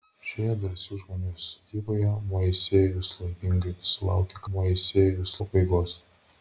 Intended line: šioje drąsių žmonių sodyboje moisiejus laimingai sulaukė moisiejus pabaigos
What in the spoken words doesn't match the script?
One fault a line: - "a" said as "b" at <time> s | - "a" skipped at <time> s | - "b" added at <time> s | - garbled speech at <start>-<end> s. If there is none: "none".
none